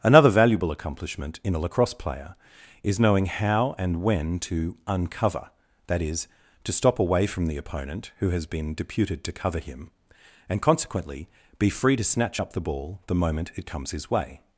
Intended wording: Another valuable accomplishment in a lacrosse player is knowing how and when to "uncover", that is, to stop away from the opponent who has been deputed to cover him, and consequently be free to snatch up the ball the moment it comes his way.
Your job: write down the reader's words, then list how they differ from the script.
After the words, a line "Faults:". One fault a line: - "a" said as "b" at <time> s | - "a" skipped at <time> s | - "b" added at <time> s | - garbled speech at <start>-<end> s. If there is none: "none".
Another valuable accomplishment in a lacrosse player is knowing how and when to "uncover", that is, to stop away from the opponent who has been deputed to cover him, and consequently be free to snatch up the ball the moment it comes his way.
Faults:
none